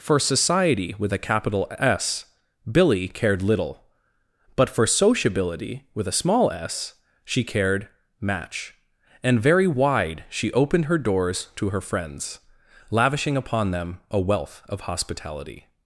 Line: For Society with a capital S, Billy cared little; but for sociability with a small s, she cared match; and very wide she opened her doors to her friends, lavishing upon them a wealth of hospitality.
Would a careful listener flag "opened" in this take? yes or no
no